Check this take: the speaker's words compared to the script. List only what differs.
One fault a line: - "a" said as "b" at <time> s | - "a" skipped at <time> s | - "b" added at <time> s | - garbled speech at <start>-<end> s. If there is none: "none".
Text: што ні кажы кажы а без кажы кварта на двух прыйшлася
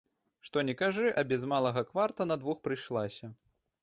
- "кажы" skipped at 1.1 s
- "кажы" said as "малага" at 1.5 s